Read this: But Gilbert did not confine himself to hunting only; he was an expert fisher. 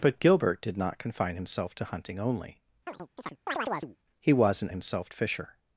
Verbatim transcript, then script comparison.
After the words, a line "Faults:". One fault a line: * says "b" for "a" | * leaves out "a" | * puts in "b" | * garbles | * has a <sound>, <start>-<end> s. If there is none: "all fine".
But Gilbert did not confine himself to hunting only; he was an himself fisher.
Faults:
* has a chirp, 2.9-4.0 s
* says "himself" for "expert"